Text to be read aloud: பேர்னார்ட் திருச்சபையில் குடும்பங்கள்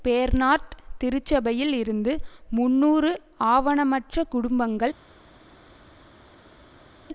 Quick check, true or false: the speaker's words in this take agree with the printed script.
false